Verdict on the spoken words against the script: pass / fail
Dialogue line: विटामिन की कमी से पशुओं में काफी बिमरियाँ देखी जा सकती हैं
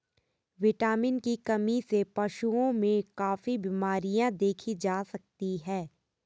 pass